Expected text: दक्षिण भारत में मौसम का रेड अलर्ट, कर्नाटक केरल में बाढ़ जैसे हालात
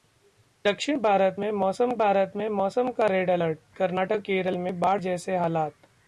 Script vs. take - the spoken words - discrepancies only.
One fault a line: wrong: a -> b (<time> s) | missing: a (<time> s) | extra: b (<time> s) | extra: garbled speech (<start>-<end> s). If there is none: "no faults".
extra: भारत में मौसम (2.0 s)